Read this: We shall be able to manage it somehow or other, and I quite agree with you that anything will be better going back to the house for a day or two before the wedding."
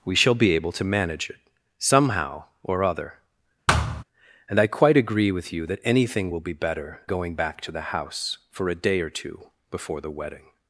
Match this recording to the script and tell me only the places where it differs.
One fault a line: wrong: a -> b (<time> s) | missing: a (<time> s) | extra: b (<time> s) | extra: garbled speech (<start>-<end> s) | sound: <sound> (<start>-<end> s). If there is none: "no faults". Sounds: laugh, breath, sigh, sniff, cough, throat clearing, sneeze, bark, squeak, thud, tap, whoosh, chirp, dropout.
sound: thud (3.7-4.0 s)